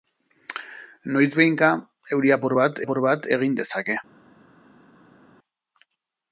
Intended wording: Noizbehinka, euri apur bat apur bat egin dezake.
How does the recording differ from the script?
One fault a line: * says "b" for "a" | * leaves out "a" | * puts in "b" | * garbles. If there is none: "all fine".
all fine